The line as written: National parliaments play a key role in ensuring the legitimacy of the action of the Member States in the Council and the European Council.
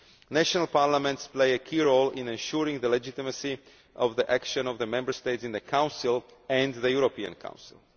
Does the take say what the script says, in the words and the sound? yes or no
yes